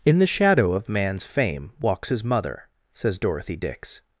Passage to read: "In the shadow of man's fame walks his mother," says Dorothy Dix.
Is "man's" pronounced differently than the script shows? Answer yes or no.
no